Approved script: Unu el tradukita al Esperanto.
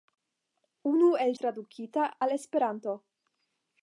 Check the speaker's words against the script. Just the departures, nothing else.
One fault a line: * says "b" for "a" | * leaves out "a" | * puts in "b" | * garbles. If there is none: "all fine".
all fine